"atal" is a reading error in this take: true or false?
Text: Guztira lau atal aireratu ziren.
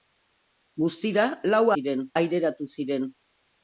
true